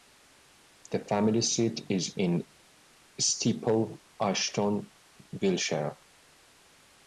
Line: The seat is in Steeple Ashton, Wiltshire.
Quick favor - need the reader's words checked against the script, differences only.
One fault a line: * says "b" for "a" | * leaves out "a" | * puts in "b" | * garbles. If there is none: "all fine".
* puts in "family"